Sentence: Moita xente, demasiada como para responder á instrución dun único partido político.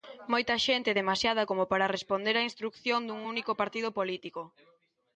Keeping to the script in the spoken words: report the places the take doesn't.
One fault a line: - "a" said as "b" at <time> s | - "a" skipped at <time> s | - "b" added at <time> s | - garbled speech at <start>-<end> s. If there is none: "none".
none